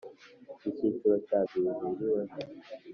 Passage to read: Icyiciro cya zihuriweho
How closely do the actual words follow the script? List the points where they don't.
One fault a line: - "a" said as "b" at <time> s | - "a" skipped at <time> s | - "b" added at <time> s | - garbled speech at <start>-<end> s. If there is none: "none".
none